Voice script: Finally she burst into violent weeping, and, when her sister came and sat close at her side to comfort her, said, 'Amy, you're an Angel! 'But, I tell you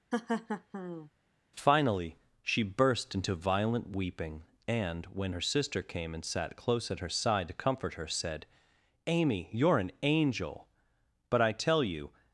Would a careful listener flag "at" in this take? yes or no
no